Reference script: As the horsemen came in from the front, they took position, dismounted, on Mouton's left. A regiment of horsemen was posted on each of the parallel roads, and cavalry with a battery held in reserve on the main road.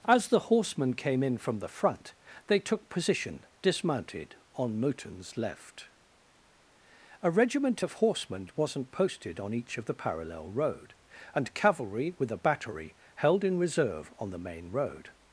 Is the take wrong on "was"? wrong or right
wrong